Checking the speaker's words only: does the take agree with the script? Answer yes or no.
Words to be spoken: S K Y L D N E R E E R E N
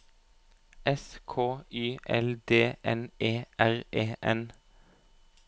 no